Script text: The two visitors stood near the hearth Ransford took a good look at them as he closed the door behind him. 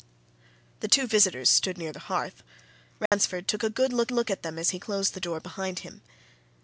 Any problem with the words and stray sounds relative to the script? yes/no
yes